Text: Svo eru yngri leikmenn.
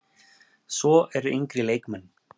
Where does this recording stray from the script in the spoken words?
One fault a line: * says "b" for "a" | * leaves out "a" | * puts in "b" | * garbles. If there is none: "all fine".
all fine